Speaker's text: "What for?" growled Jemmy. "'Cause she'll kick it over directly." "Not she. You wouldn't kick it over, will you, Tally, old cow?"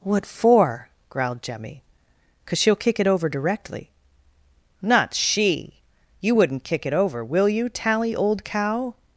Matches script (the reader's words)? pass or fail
pass